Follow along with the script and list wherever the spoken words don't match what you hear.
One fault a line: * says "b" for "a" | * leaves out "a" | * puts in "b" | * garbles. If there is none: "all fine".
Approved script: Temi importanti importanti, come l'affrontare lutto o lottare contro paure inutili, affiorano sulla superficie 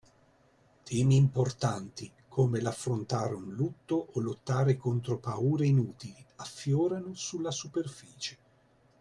* leaves out "importanti"
* puts in "un"